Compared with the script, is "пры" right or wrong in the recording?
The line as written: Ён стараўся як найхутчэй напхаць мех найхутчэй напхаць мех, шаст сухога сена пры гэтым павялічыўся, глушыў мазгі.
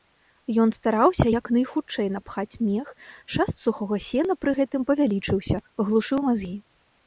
right